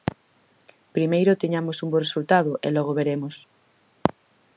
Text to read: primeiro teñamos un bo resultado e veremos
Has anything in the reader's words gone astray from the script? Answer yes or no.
yes